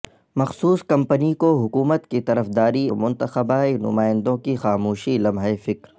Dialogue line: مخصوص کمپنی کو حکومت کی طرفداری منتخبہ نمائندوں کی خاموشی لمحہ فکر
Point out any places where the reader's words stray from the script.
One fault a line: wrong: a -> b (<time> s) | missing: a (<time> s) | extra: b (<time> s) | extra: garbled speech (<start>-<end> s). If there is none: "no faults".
no faults